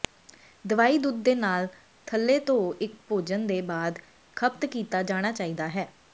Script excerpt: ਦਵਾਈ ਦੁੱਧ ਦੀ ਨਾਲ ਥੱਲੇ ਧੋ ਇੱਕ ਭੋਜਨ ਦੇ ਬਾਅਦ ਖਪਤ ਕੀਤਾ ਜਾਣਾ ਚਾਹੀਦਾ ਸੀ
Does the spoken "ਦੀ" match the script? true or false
false